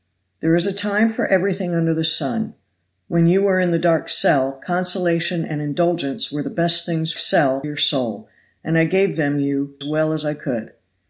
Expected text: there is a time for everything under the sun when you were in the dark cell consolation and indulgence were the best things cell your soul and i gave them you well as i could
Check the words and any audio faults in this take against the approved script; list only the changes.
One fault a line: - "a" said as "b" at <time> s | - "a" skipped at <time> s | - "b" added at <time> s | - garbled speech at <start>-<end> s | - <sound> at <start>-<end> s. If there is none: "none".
none